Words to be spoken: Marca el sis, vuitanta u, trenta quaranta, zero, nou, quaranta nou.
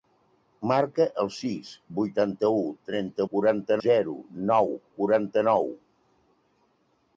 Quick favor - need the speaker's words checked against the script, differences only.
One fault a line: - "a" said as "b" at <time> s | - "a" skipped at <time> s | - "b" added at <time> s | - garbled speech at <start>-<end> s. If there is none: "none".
none